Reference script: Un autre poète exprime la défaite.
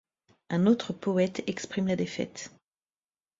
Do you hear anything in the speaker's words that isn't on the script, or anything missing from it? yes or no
no